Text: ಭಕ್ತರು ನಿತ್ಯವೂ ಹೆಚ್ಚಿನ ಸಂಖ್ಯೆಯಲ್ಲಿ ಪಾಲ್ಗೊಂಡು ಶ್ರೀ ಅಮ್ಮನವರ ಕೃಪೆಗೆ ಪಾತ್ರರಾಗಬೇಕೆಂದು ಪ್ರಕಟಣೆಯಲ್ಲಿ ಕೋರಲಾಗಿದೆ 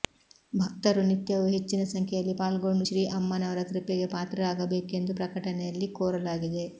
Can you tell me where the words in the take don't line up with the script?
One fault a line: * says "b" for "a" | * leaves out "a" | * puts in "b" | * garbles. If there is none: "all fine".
all fine